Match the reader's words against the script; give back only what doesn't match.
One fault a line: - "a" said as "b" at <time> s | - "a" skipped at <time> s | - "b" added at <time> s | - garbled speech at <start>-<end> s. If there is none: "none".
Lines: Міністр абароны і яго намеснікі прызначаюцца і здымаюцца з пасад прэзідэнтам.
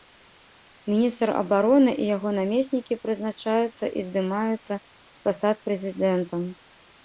none